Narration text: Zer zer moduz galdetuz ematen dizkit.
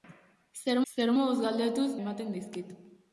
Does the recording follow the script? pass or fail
pass